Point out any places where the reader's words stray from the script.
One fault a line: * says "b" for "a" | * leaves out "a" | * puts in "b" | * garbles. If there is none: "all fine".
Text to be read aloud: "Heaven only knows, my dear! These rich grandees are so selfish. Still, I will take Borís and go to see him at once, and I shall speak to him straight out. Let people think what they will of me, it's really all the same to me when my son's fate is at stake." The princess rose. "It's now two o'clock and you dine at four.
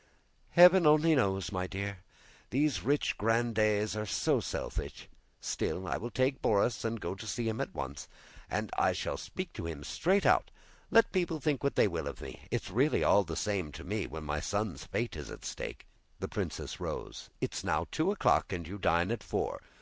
all fine